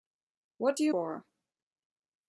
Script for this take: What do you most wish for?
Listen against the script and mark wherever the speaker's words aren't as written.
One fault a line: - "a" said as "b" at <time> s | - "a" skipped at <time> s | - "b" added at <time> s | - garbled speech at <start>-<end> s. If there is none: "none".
- "most wish" skipped at 0.9 s